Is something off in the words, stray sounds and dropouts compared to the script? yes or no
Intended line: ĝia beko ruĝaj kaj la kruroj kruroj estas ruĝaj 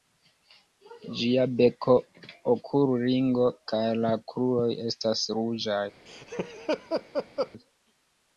yes